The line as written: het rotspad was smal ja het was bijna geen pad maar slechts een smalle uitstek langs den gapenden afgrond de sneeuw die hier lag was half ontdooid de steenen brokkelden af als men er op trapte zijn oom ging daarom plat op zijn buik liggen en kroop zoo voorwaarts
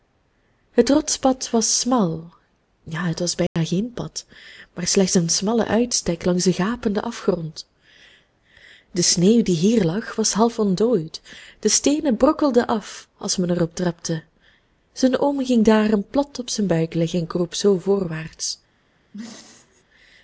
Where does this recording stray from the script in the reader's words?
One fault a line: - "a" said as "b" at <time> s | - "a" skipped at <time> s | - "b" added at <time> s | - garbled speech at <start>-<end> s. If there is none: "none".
none